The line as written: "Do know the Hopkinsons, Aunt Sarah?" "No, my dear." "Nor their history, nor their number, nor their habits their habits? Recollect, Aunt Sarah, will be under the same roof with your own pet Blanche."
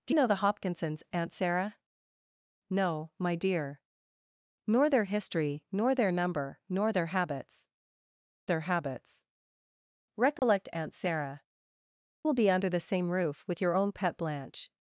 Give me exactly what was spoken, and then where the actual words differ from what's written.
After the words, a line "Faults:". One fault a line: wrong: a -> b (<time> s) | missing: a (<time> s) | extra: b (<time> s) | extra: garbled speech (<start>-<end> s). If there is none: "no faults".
"Do know the Hopkinsons, Aunt Sarah?" "No, my dear." "Nor their history, nor their number, nor their habits their habits? Recollect, Aunt Sarah, will be under the same roof with your own pet Blanche."
Faults:
no faults